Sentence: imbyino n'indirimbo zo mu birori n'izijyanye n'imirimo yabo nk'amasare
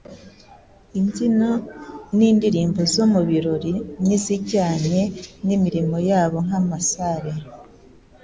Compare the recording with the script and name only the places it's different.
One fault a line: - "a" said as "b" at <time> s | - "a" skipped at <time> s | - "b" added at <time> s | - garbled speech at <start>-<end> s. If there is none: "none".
none